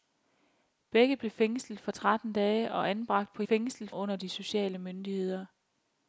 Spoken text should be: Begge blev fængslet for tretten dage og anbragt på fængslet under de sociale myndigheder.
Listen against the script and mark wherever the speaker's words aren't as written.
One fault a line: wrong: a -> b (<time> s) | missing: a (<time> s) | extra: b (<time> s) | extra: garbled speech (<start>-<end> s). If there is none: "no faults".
no faults